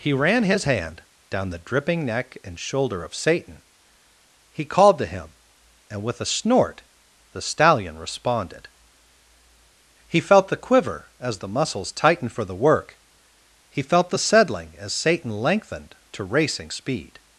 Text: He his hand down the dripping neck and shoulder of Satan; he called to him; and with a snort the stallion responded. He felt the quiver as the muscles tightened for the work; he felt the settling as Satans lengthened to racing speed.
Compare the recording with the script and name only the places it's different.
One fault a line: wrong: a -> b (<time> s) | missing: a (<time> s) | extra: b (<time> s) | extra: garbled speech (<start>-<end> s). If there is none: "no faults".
extra: ran (0.1 s)
wrong: Satans -> Satan (14.9 s)